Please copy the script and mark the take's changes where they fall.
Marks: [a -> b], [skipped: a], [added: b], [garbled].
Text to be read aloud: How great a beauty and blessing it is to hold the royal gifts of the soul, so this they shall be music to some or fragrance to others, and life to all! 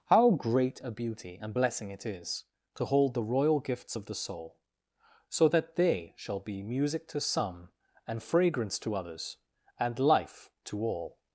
How great a beauty and blessing it is to hold the royal gifts of the soul, so [this -> that] they shall be music to some [or -> and] fragrance to others, and life to all!